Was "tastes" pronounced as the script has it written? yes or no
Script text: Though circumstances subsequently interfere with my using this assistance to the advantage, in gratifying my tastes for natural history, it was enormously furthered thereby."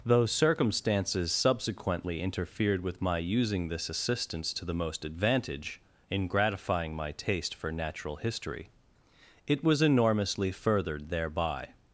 no